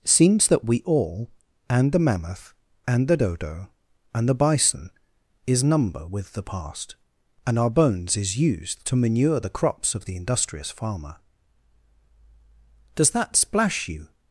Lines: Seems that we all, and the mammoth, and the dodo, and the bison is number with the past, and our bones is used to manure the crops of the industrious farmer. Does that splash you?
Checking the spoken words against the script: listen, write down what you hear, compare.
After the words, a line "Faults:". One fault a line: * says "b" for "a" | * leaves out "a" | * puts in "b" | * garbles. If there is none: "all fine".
Seems that we all, and the mammoth, and the dodo, and the bison is number with the past, and our bones is used to manure the crops of the industrious farmer. Does that splash you?
Faults:
all fine